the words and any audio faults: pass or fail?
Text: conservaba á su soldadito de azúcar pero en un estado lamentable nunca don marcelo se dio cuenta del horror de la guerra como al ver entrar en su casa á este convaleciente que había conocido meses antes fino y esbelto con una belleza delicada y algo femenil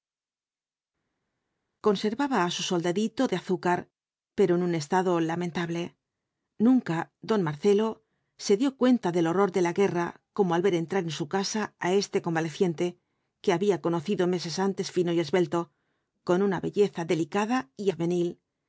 fail